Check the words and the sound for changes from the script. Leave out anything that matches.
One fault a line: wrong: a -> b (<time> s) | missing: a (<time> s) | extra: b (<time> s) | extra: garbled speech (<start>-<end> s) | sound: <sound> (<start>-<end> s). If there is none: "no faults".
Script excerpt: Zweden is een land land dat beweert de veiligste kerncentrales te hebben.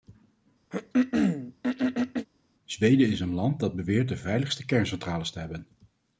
sound: throat clearing (0.7-2.3 s)
missing: land (3.6 s)